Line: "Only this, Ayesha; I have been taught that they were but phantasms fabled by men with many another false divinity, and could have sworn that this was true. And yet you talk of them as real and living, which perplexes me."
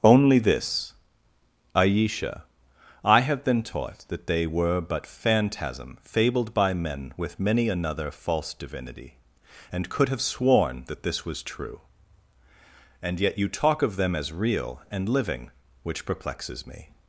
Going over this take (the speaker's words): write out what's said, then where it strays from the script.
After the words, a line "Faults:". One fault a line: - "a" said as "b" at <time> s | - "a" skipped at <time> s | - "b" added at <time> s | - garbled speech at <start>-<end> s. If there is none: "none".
"Only this, Ayesha; I have been taught that they were but phantasm fabled by men with many another false divinity, and could have sworn that this was true. And yet you talk of them as real and living, which perplexes me."
Faults:
- "phantasms" said as "phantasm" at 5.0 s